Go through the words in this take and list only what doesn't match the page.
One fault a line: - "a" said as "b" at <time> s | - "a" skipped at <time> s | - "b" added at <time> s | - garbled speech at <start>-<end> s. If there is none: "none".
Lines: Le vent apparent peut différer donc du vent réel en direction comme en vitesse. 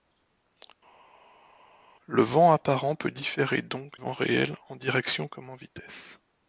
- "du" skipped at 3.9 s